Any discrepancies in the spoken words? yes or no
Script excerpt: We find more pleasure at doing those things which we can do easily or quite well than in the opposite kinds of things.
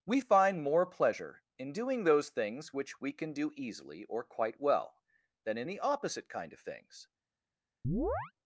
yes